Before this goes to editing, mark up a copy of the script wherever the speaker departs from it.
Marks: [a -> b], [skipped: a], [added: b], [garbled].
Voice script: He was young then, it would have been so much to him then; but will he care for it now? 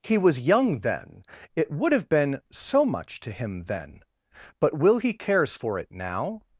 He was young then, it would have been so much to him then; but will he [care -> cares] for it now?